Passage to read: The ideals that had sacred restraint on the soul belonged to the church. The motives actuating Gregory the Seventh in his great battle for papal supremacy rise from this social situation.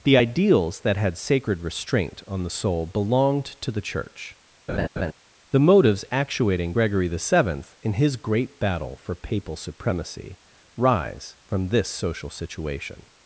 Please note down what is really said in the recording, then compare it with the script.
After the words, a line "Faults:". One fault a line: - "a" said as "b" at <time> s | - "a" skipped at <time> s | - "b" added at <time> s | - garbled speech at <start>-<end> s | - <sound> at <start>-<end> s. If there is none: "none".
The ideals that had sacred restraint on the soul belonged to the church. The motives actuating Gregory the Seventh in his great battle for papal supremacy rise from this social situation.
Faults:
- laugh at 4.7-5.1 s